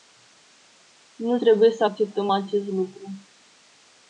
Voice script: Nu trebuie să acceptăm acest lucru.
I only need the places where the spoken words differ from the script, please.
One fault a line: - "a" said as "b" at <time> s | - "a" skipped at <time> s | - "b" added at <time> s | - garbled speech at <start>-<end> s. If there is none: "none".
none